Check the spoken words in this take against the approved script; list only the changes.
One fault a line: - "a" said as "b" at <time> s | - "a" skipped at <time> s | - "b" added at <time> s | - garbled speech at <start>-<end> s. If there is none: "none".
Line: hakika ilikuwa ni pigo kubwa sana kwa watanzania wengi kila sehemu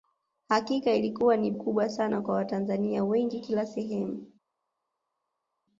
- "pigo" skipped at 1.5 s